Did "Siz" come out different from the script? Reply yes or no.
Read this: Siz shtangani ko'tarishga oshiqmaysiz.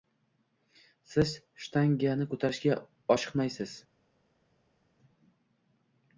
no